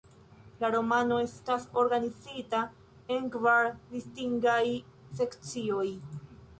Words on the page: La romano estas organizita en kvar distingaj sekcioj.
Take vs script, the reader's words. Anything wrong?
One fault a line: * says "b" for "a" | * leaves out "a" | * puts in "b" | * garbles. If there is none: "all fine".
all fine